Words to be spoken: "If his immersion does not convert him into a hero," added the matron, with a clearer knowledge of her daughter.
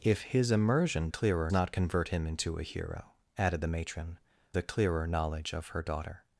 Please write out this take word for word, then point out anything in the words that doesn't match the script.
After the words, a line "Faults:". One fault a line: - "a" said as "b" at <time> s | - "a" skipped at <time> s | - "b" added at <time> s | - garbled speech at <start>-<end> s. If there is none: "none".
"If his immersion clearer not convert him into a hero," added the matron, a clearer knowledge of her daughter.
Faults:
- "does" said as "clearer" at 1.1 s
- "with" skipped at 4.2 s